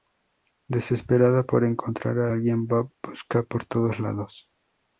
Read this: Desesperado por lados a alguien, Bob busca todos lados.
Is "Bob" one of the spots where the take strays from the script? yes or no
no